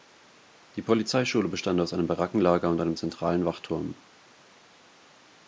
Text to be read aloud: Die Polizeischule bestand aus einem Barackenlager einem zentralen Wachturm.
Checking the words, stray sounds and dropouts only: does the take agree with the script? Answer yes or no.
no